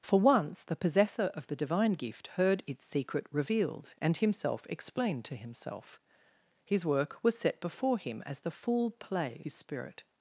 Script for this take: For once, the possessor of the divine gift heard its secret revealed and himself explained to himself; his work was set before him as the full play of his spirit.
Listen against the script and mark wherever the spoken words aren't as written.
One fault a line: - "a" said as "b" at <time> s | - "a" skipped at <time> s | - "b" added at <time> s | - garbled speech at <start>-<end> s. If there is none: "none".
- "of" skipped at 9.4 s